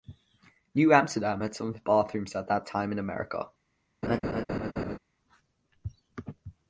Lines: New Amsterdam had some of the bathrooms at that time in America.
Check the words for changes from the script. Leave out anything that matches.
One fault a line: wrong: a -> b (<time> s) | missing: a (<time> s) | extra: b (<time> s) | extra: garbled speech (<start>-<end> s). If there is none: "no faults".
no faults